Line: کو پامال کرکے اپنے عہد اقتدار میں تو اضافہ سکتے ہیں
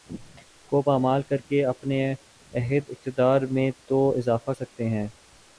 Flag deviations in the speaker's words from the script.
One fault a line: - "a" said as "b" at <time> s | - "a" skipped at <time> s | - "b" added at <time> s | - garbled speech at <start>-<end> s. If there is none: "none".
none